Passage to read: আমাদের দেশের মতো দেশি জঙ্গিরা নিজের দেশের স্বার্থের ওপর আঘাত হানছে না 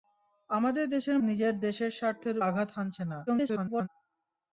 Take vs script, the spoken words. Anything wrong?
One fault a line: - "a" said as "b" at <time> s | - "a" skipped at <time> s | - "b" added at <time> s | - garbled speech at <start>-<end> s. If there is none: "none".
- "মতো দেশি জঙ্গিরা" skipped at 1.2 s
- "ওপর" skipped at 2.4 s
- garbled speech at 3.3-3.9 s